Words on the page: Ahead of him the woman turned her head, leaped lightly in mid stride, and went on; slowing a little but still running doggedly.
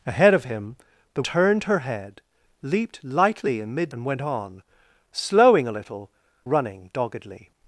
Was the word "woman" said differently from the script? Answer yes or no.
yes